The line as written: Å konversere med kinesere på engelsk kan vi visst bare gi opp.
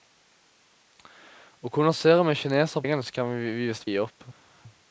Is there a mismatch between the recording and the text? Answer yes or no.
yes